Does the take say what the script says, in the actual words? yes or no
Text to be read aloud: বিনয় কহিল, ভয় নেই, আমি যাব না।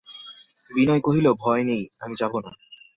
yes